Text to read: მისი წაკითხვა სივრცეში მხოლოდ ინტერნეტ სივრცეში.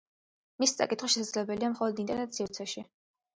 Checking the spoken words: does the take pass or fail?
fail